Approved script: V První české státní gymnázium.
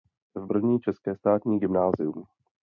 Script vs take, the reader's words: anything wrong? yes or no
no